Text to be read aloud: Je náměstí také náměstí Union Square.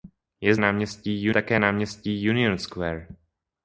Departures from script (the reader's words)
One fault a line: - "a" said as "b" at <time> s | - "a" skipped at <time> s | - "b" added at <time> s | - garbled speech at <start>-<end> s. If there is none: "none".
none